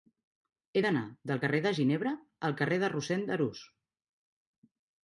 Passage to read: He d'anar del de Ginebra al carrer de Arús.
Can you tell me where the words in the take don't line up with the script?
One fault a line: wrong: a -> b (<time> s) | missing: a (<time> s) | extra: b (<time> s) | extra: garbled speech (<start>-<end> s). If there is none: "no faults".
extra: carrer (1.5 s)
extra: Rossend (3.0 s)